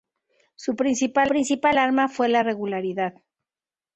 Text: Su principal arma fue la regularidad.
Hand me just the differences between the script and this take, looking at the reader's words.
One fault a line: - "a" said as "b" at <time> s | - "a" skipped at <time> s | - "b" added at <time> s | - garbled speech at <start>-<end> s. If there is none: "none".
- "principal" added at 1.3 s